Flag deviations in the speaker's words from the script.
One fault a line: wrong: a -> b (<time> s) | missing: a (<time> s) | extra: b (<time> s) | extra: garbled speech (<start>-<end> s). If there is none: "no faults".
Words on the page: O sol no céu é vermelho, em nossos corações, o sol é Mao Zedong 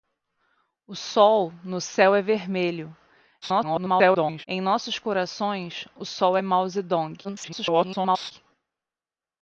extra: garbled speech (3.4-4.5 s)
extra: garbled speech (7.2-8.3 s)